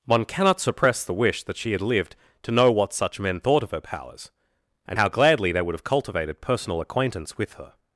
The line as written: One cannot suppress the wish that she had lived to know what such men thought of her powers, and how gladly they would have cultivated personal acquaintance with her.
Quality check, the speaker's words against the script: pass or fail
pass